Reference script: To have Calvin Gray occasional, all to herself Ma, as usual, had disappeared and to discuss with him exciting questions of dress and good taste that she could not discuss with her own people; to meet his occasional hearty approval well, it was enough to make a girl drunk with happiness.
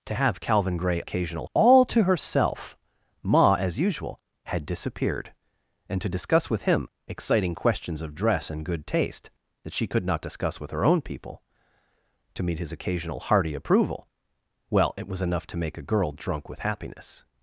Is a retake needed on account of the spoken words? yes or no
no